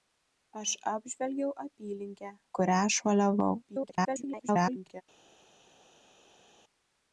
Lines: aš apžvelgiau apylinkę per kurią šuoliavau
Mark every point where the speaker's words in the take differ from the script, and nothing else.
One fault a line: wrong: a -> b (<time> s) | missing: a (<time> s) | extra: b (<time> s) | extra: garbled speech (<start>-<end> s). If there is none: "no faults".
missing: per (2.3 s)
extra: garbled speech (3.6-5.0 s)